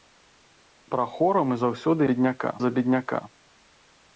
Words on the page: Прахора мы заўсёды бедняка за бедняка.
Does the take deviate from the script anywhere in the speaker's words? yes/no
no